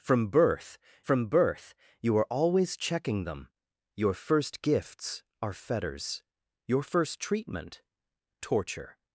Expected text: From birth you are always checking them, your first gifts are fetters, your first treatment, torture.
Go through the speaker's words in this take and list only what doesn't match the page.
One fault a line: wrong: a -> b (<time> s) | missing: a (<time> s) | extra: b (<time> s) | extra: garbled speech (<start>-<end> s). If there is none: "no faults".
extra: from birth (1.0 s)